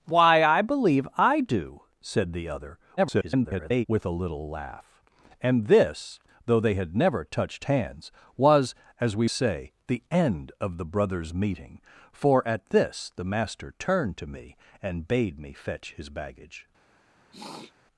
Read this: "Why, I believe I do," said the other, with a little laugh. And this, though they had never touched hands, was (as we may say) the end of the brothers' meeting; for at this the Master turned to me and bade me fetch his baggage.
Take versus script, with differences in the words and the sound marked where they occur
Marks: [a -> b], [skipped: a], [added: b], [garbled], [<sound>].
"Why, I believe I do," said the other, [garbled] with a little laugh. And this, though they had never touched hands, was (as we [skipped: may] say) the end of the brothers' meeting; for at this the Master turned to me and bade me fetch his baggage. [sniff]